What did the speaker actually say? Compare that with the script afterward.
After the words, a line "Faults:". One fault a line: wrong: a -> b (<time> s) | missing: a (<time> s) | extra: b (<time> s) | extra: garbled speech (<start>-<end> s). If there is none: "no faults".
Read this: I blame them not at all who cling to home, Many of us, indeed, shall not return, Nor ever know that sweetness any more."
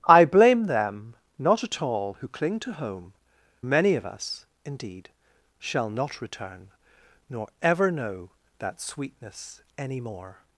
I blame them not at all who cling to home, Many of us, indeed, shall not return, Nor ever know that sweetness any more."
Faults:
no faults